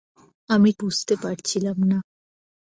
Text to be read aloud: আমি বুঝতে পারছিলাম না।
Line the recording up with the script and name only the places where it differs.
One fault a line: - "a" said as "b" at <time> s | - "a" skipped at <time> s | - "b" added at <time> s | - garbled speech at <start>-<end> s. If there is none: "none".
none